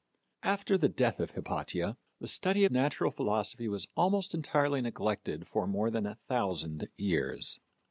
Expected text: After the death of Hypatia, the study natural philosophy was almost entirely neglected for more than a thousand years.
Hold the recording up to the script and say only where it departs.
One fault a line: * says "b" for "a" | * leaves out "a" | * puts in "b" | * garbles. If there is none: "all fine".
all fine